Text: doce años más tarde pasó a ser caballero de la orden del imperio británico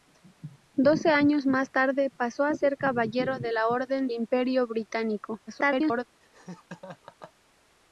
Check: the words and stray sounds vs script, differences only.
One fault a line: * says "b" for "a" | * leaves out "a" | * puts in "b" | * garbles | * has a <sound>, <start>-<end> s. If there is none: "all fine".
* leaves out "del"
* garbles
* has a laugh, 6.2-7.3 s